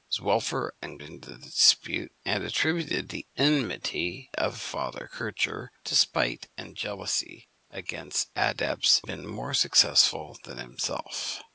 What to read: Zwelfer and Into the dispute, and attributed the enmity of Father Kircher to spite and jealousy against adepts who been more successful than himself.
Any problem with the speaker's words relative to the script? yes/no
no